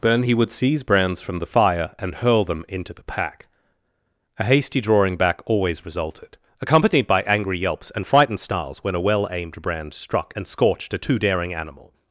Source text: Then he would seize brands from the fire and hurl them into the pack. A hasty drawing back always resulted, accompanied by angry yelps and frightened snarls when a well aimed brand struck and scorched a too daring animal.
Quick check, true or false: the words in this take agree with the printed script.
true